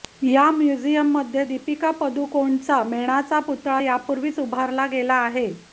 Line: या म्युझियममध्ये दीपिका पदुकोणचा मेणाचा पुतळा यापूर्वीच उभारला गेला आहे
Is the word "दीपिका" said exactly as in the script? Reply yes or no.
yes